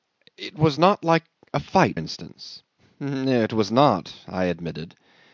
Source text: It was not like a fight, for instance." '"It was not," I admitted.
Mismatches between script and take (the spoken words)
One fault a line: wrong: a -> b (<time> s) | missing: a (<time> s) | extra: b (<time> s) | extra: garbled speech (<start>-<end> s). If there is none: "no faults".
missing: for (2.0 s)